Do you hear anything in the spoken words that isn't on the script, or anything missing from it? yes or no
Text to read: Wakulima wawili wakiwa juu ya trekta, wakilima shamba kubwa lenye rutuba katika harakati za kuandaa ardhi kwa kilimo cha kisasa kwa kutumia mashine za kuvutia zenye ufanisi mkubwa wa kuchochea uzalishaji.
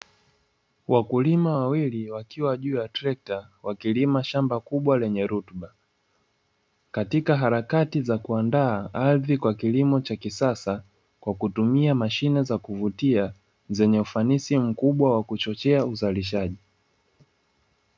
no